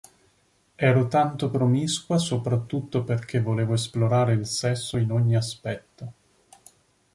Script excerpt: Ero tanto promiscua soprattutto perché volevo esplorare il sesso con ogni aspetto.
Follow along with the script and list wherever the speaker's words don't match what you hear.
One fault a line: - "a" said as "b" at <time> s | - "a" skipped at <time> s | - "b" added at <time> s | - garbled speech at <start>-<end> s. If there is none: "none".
- "con" said as "in" at 5.0 s